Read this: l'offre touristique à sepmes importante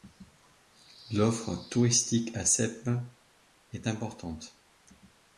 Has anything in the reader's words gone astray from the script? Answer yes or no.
yes